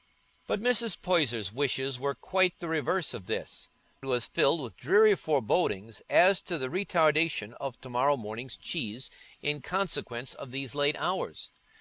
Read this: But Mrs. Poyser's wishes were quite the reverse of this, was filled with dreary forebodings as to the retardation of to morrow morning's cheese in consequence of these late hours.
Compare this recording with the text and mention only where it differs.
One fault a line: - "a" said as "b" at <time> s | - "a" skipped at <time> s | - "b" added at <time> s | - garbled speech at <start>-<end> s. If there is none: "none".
none